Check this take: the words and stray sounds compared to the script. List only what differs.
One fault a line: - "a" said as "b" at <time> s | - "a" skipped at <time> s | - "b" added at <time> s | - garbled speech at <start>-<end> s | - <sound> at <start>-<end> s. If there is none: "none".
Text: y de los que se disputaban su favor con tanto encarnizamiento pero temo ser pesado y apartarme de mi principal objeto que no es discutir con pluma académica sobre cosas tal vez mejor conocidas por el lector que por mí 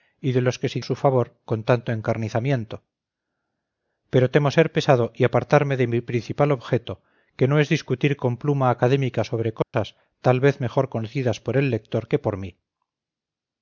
- "disputaban" skipped at 0.8 s
- dropout at 9.6-9.7 s